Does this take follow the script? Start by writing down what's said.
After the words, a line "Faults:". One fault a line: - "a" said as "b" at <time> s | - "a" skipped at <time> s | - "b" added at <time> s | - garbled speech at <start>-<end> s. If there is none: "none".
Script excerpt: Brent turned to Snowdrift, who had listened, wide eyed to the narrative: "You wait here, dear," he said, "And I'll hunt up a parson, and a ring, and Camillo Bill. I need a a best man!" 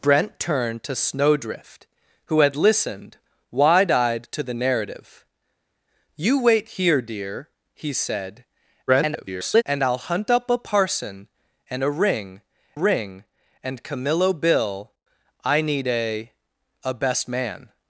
Brent turned to Snowdrift, who had listened, wide eyed to the narrative: "You wait here, dear," he said, [garbled] "And I'll hunt up a parson, and a ring ring, and Camillo Bill. I need a a best man!"
Faults:
- garbled speech at 8.9-9.6 s
- "ring" added at 12.7 s